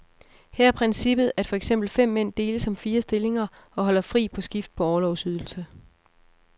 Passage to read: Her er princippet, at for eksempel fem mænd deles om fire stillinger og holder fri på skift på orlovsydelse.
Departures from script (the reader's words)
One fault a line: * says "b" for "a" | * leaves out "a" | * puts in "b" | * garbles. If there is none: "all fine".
all fine